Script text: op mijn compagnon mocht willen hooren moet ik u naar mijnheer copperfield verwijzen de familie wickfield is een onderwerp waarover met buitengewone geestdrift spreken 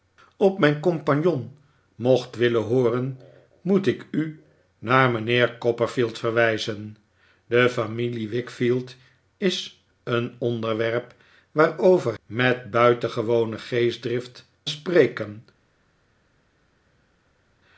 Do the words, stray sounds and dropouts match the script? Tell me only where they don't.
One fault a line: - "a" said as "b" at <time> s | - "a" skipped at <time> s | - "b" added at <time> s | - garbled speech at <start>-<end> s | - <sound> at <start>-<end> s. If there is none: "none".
none